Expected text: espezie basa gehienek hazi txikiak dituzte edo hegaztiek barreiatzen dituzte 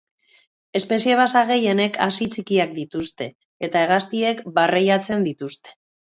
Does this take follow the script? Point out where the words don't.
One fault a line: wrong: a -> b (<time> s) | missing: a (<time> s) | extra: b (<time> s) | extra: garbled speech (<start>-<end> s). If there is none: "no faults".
wrong: edo -> eta (3.7 s)